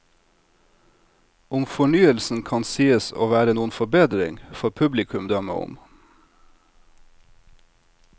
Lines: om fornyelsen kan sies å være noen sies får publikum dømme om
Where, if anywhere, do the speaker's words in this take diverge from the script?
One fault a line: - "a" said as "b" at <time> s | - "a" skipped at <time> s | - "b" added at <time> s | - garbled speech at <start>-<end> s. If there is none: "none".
- "sies" said as "forbedring" at 3.7 s